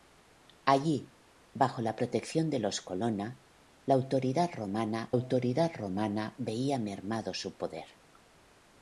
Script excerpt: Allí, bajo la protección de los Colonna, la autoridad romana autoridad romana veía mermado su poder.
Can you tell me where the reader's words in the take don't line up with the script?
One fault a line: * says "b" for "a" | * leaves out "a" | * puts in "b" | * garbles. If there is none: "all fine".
all fine